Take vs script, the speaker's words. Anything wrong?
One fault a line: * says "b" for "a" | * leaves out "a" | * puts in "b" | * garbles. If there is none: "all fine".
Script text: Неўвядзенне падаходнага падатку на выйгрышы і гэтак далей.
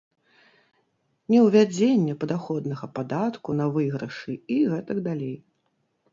all fine